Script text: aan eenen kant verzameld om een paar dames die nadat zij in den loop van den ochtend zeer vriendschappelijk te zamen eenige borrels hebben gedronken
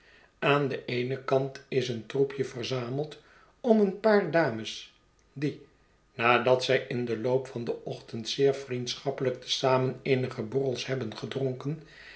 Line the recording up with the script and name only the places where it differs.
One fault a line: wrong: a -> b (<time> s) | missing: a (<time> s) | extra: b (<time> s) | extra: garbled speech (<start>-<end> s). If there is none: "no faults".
extra: den (0.7 s)
extra: is een troepje (1.7 s)